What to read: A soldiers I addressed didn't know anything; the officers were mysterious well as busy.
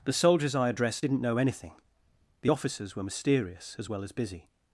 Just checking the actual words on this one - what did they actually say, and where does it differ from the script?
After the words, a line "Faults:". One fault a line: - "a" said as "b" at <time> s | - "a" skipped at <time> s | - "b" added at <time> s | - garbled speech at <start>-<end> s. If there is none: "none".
The soldiers I addressed didn't know anything; the officers were mysterious as well as busy.
Faults:
- "A" said as "The" at 0.0 s
- "as" added at 3.8 s